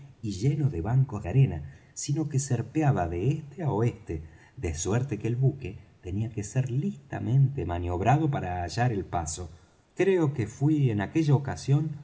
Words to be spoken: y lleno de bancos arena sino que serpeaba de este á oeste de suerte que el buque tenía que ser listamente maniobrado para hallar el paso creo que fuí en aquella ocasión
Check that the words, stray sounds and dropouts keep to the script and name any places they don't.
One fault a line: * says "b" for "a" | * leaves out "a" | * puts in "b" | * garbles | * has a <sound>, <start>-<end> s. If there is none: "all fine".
all fine